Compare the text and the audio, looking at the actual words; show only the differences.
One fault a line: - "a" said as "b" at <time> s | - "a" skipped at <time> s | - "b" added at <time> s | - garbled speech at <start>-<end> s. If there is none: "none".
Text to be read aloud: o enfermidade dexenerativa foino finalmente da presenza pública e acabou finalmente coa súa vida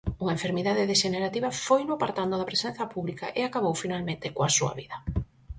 - "o" said as "unha" at 0.2 s
- "finalmente" said as "apartando" at 1.9 s